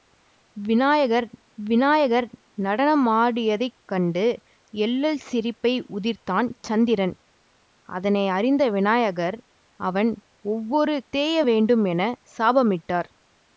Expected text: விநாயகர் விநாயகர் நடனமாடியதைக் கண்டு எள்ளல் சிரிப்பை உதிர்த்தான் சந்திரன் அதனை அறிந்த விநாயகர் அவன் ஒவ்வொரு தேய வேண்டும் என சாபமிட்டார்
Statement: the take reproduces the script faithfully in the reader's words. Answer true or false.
true